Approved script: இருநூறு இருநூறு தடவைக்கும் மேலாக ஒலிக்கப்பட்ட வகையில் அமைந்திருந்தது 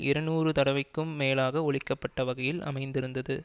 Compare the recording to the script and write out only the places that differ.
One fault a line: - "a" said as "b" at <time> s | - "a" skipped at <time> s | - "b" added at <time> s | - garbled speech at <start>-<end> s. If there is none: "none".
- "இருநூறு" skipped at 0.5 s